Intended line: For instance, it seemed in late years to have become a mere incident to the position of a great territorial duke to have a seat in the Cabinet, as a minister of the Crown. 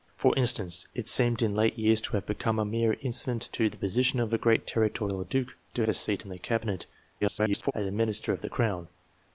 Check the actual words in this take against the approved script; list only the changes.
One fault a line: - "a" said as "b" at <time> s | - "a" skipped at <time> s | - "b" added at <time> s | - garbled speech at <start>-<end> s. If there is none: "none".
- "have" skipped at 5.8 s
- garbled speech at 7.2-7.7 s